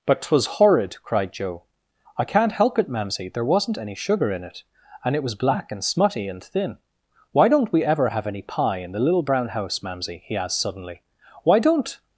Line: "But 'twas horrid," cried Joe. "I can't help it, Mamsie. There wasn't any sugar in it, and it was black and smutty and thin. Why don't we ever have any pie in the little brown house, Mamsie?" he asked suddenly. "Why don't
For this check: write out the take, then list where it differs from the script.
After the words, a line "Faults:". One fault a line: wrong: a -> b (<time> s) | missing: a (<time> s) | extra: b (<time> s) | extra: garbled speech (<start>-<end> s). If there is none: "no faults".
"But 'twas horrid," cried Joe. "I can't help it, Mamsie. There wasn't any sugar in it, and it was black and smutty and thin. Why don't we ever have any pie in the little brown house, Mamsie?" he asked suddenly. "Why don't
Faults:
no faults